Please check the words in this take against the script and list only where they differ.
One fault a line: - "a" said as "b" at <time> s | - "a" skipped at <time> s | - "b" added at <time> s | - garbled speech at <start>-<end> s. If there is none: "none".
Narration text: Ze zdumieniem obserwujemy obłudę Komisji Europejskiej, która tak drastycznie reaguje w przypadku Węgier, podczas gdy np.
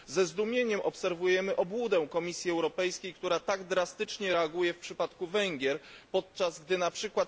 none